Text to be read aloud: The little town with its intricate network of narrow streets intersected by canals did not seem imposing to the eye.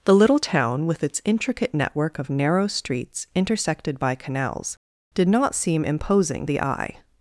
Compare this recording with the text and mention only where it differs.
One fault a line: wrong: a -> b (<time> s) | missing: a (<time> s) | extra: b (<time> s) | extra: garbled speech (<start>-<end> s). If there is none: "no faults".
missing: to (6.5 s)